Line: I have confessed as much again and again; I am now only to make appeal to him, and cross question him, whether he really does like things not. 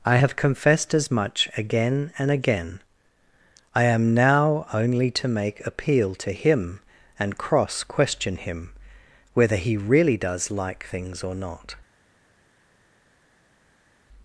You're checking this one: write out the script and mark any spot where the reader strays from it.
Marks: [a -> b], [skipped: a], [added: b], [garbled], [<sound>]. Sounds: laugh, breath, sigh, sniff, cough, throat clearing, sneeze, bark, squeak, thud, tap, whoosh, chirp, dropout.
I have confessed as much again and again; I am now only to make appeal to him, and cross question him, whether he really does like things [added: or] not.